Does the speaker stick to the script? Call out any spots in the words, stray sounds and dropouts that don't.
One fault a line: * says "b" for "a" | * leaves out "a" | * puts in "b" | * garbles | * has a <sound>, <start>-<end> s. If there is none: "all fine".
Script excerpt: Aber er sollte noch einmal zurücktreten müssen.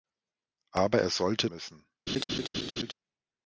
* leaves out "noch einmal zurücktreten"
* has a laugh, 2.1-2.9 s